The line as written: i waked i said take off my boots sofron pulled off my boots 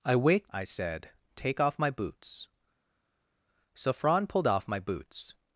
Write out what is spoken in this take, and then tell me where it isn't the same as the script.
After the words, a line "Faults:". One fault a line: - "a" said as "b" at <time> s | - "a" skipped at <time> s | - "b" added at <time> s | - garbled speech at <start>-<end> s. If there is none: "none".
i waked i said take off my boots sofron pulled off my boots
Faults:
none